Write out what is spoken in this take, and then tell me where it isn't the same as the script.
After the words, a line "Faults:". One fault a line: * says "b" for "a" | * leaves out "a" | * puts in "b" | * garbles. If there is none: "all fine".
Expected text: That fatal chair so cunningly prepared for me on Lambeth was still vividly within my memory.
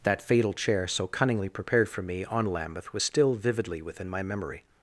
That fatal chair so cunningly prepared for me on Lambeth was still vividly within my memory.
Faults:
all fine